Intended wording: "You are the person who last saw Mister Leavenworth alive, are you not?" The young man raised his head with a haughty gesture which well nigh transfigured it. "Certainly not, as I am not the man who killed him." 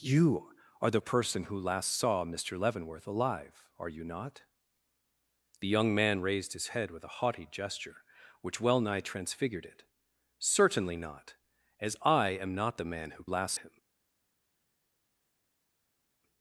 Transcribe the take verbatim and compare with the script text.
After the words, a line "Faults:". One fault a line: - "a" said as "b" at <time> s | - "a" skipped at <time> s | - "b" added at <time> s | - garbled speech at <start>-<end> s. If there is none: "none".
"You are the person who last saw Mister Leavenworth alive, are you not?" The young man raised his head with a haughty gesture which well nigh transfigured it. "Certainly not, as I am not the man who last him."
Faults:
- "killed" said as "last" at 13.3 s